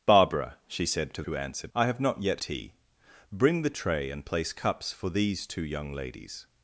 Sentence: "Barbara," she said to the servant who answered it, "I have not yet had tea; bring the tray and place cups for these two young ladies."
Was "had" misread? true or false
true